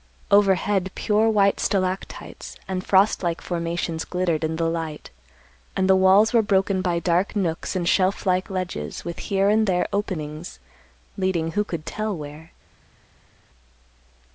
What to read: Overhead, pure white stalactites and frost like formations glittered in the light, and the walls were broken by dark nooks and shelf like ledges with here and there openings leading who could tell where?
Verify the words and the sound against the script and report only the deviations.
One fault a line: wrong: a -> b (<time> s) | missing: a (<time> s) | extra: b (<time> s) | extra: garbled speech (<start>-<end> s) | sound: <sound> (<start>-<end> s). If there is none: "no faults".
no faults